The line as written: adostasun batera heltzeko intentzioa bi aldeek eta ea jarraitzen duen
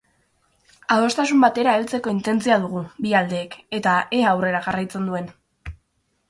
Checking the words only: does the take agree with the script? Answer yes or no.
no